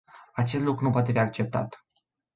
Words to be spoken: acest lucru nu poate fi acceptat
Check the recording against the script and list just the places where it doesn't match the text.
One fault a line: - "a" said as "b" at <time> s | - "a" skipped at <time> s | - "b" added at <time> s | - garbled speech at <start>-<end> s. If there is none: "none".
- "fi" skipped at 1.1 s